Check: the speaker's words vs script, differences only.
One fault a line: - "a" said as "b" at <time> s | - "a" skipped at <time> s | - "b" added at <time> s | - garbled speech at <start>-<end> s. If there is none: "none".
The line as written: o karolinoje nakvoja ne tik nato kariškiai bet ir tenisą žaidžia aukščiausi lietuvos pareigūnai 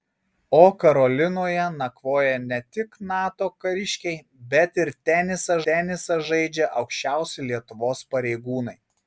- "tenisą" added at 5.7 s